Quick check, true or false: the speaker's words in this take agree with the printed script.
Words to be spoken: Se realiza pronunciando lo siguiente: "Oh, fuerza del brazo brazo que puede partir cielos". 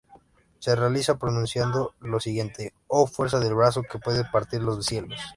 false